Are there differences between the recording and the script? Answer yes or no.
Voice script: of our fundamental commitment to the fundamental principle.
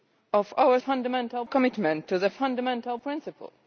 no